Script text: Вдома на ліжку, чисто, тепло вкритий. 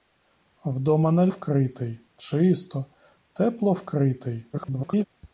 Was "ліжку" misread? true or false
true